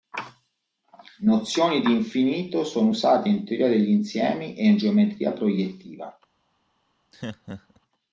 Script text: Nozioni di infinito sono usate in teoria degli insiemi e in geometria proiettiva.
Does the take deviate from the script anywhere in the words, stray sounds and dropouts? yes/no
yes